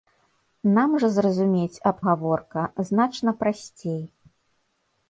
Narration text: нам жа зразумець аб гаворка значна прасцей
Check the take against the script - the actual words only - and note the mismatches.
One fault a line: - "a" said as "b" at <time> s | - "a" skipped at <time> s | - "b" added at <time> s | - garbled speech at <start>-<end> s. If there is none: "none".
none